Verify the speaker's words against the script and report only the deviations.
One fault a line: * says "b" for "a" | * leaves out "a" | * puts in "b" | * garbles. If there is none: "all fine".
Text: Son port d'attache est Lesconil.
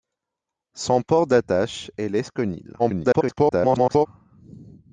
* garbles